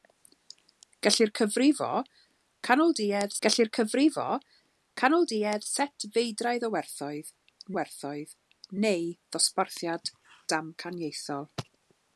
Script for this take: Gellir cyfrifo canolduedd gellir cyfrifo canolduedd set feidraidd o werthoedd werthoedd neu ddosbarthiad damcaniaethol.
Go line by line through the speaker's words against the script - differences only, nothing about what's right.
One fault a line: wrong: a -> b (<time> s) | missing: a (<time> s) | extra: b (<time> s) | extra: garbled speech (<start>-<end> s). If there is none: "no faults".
no faults